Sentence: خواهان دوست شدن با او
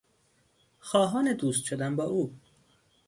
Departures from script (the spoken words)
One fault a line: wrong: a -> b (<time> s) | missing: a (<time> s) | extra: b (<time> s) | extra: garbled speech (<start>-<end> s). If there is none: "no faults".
no faults